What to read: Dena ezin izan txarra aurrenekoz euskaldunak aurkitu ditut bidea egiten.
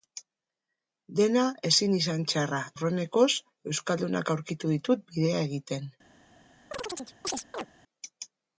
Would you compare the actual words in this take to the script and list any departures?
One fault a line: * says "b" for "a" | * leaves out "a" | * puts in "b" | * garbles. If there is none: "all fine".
all fine